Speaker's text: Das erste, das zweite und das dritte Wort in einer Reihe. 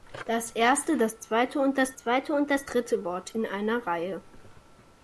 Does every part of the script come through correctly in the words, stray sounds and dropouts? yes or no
no